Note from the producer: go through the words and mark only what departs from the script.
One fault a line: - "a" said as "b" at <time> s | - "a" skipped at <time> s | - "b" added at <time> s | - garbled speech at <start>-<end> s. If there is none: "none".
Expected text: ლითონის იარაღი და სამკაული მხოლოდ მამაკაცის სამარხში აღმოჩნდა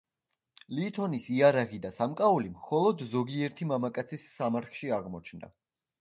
- "ზოგიერთი" added at 3.1 s